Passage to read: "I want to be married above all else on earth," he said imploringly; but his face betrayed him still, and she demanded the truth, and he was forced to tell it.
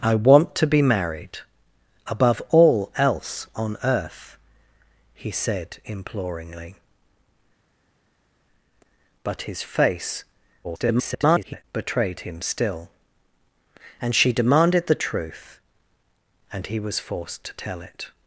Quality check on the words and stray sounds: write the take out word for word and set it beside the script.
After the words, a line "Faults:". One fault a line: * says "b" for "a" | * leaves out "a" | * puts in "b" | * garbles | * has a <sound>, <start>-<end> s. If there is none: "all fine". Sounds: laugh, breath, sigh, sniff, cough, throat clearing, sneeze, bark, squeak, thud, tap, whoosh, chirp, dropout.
"I want to be married above all else on earth," he said imploringly; but his face [garbled] betrayed him still, and she demanded the truth, and he was forced to tell it.
Faults:
* garbles